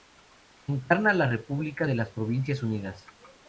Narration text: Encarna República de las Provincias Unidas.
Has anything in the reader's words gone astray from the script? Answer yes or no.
yes